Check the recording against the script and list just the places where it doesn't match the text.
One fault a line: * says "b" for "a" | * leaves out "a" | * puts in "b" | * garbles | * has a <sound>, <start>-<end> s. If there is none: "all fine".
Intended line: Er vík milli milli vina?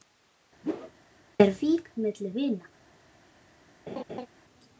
* has a whoosh, 0.6-0.9 s
* leaves out "milli"
* has a laugh, 3.9-4.3 s